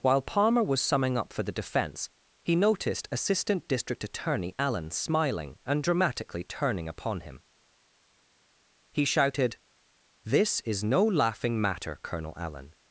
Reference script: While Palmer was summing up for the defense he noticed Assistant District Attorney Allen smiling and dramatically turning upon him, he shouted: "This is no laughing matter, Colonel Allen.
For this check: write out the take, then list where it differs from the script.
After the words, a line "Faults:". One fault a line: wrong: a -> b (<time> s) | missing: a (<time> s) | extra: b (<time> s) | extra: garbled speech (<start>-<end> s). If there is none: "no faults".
While Palmer was summing up for the defense he noticed Assistant District Attorney Allen smiling and dramatically turning upon him, he shouted: "This is no laughing matter, Colonel Allen.
Faults:
no faults